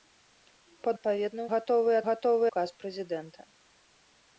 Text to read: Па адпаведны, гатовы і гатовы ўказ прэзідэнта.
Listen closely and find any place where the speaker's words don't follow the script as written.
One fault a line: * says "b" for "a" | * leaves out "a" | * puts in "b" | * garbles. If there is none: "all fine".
all fine